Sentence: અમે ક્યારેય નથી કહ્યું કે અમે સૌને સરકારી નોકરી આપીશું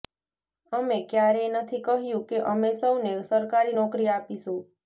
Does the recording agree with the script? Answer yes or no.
yes